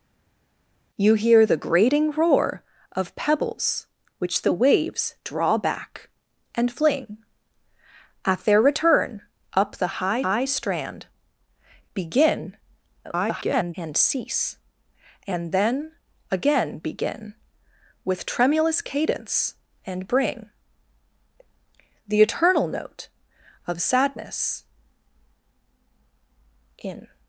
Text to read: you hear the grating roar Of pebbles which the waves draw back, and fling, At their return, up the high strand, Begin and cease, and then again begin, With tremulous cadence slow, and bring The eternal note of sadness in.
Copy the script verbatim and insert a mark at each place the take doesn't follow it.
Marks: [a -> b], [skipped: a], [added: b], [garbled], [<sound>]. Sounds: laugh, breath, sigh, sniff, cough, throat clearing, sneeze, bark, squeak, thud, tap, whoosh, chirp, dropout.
you hear the grating roar Of pebbles which the waves draw back, and fling, At their return, up the high [added: high] strand, Begin [garbled] and cease, and then again begin, With tremulous cadence [skipped: slow,] and bring The eternal note of sadness in.